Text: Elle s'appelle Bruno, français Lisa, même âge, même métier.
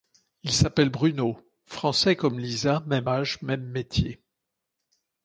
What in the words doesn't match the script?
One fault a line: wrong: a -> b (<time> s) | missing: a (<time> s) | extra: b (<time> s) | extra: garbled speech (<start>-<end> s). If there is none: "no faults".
wrong: Elle -> Il (0.4 s)
extra: comme (2.1 s)